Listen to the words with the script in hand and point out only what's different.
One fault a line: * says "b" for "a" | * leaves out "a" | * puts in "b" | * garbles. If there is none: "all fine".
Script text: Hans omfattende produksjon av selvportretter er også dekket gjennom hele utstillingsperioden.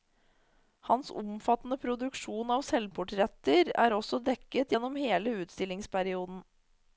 all fine